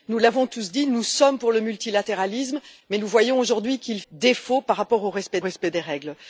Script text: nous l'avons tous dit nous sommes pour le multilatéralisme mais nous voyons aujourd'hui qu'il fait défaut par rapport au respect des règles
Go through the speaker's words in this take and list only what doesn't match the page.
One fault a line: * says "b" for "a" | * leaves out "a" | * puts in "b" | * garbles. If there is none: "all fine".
* leaves out "fait"
* puts in "respect"